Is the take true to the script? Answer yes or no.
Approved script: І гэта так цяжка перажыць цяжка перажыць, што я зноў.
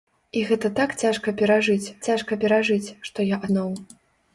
yes